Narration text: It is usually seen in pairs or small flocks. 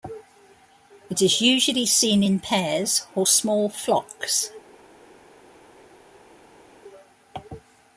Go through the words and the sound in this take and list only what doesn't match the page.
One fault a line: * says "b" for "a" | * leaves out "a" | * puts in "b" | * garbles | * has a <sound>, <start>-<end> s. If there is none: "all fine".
all fine